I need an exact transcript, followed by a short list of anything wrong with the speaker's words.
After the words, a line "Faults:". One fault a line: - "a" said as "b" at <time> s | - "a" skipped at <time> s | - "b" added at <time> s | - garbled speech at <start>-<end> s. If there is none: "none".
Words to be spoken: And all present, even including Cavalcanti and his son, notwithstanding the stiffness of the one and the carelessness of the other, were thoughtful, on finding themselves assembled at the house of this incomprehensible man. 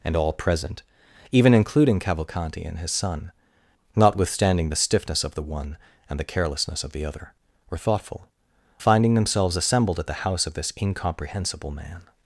And all present, even including Cavalcanti and his son, notwithstanding the stiffness of the one and the carelessness of the other, were thoughtful, finding themselves assembled at the house of this incomprehensible man.
Faults:
- "on" skipped at 8.3 s